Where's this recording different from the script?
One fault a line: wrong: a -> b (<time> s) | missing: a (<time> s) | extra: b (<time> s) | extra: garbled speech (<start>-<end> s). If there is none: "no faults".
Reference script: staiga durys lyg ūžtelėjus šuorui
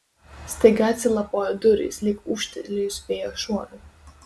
extra: atsilapojo (0.9 s)
extra: vėjo (3.1 s)